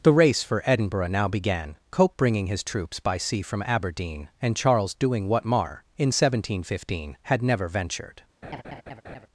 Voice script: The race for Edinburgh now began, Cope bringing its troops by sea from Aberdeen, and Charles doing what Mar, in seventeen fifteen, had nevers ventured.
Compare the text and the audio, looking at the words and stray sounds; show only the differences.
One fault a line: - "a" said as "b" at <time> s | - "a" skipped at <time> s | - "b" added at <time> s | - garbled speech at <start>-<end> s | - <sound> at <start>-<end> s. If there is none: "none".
- "its" said as "his" at 2.5 s
- "nevers" said as "never" at 7.4 s
- laugh at 8.4-9.3 s